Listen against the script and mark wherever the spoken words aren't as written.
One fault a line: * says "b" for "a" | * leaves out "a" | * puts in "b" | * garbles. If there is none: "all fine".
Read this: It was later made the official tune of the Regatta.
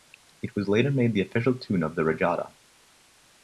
all fine